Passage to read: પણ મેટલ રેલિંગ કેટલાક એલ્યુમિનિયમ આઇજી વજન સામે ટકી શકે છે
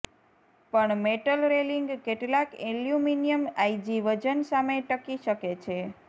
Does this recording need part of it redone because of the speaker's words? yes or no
no